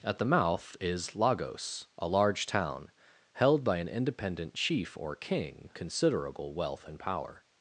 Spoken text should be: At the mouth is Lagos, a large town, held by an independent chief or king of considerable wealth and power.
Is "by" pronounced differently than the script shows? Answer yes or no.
no